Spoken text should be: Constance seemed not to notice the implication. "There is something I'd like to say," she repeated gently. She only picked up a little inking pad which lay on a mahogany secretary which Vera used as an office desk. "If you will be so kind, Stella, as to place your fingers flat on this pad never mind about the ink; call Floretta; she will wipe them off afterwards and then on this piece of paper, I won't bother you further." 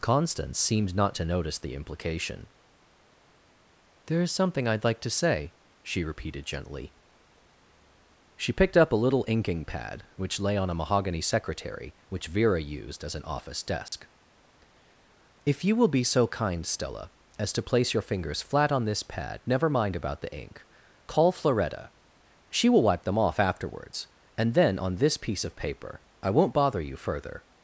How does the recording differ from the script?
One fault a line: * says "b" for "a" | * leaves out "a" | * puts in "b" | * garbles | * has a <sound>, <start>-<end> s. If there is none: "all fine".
* leaves out "only"
* has a dropout, 13.9-13.9 s